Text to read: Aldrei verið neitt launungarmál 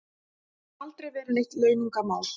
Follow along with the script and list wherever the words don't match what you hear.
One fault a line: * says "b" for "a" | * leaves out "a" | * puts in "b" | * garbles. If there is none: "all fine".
all fine